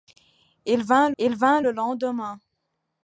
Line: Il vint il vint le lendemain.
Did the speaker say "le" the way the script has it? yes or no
yes